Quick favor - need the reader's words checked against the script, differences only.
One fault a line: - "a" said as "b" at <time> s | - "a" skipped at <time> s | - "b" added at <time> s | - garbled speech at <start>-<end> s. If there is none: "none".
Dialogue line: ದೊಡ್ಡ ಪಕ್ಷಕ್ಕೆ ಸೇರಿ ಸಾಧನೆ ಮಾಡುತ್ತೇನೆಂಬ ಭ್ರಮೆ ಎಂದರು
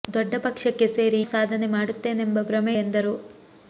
none